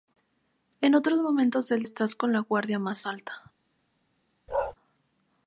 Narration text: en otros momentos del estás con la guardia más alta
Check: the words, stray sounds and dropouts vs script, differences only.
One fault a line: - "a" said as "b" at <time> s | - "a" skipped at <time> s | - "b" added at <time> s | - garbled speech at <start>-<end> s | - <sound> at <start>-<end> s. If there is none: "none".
- bark at 4.5-4.7 s